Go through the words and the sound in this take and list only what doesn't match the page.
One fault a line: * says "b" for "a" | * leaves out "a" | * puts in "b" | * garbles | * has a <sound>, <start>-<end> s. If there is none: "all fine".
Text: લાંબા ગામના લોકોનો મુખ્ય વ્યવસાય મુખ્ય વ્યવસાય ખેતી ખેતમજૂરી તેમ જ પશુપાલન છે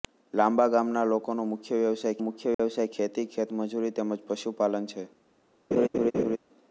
* has a dropout, 2.5-2.6 s
* has a laugh, 5.7-6.4 s